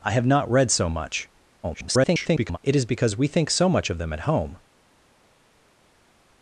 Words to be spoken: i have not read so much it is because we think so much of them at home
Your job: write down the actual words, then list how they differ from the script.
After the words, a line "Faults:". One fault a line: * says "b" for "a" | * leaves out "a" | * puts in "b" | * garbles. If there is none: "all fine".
i have not read so much [garbled] it is because we think so much of them at home
Faults:
* garbles